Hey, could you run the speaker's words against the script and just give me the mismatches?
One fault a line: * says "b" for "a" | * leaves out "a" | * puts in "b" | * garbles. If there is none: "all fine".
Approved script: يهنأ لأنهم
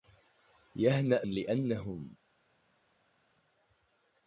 all fine